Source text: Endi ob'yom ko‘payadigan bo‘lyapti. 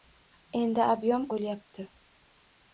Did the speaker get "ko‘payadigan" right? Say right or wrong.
wrong